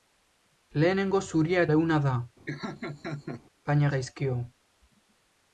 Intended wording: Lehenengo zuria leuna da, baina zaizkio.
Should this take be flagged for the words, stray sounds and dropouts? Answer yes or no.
yes